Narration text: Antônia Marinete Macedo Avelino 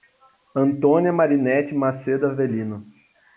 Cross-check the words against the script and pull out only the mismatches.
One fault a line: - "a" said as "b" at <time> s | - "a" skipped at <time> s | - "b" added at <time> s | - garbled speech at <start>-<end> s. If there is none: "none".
none